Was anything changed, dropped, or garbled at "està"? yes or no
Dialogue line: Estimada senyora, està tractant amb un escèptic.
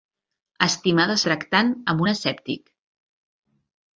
yes